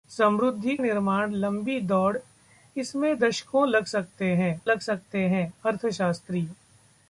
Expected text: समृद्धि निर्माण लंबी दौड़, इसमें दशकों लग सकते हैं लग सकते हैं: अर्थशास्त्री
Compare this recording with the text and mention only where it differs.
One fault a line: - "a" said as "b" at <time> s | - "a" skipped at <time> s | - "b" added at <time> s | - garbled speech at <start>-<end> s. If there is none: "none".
none